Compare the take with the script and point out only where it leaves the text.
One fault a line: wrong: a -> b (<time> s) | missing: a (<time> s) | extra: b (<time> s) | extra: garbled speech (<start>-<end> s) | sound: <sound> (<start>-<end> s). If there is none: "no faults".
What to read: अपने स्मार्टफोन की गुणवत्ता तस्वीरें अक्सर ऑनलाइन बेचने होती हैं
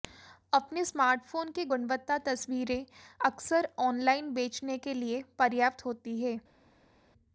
extra: के लिए पर्याप्त (4.8 s)